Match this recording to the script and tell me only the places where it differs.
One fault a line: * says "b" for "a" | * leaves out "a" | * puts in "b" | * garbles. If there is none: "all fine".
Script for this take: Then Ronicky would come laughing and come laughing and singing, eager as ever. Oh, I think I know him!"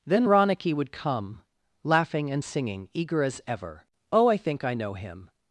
* leaves out "come laughing and"